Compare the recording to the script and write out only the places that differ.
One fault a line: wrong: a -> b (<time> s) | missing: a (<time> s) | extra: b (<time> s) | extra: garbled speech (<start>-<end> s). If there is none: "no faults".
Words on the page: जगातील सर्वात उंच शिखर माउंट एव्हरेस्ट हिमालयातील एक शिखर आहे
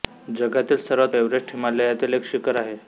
missing: उंच शिखर माउंट (1.1 s)